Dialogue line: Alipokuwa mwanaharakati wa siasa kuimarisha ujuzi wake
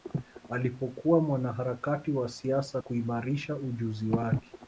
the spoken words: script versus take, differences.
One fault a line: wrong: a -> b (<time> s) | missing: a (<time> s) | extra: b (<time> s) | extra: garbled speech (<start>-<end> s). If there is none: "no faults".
no faults